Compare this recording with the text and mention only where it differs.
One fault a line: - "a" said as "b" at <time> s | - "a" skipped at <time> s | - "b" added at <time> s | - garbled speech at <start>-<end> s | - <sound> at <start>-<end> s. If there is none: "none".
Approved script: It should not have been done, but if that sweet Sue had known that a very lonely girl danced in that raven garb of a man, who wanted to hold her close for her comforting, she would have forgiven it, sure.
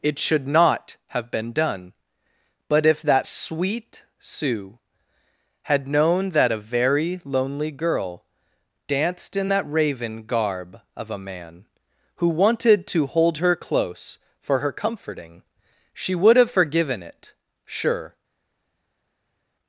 none